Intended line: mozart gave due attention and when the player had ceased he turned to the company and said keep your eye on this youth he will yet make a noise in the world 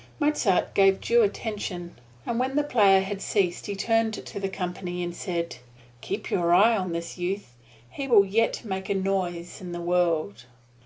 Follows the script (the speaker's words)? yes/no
yes